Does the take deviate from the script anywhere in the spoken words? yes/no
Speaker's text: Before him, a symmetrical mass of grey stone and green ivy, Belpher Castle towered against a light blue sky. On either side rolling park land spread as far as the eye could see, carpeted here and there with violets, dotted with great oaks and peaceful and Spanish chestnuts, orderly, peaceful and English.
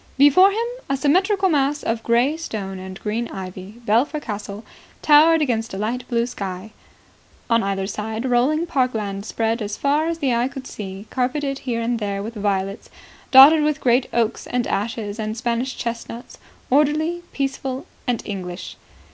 yes